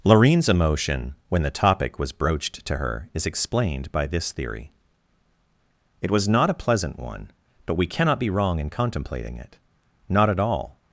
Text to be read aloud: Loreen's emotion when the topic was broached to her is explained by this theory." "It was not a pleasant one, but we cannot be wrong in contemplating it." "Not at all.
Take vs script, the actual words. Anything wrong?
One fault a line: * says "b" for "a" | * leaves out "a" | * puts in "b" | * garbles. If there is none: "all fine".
all fine